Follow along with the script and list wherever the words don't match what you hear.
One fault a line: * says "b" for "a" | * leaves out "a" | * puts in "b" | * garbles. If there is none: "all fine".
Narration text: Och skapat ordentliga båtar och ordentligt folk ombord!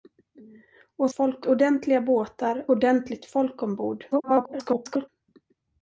* says "folk" for "skapat"
* leaves out "och"
* garbles